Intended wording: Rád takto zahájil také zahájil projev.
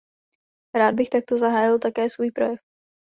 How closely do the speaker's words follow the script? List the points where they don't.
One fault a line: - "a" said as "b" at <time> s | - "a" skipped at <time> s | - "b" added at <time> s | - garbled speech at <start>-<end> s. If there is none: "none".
- "bych" added at 0.9 s
- "zahájil" said as "svůj" at 2.1 s